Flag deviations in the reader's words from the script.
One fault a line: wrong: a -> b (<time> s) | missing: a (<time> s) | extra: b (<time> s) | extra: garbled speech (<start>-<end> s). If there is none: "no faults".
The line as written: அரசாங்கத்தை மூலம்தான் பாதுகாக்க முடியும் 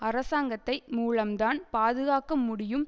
no faults